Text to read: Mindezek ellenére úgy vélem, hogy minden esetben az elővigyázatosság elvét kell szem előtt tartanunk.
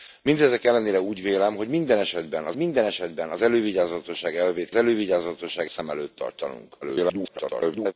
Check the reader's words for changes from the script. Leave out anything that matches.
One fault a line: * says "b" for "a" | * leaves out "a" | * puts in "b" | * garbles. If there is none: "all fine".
* puts in "minden esetben az"
* says "elővigyázatosság" for "kell"
* garbles